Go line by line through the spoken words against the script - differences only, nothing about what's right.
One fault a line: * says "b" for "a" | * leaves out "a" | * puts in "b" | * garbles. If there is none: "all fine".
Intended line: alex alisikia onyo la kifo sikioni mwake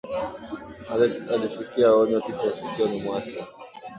* leaves out "la"